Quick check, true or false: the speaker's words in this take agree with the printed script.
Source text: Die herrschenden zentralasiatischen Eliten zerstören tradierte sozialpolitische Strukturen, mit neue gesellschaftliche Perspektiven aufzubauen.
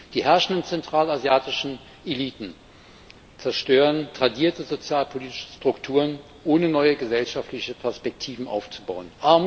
false